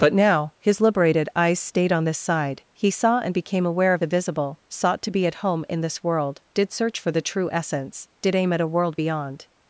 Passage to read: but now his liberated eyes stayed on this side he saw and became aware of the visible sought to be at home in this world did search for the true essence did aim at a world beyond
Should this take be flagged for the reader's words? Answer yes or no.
no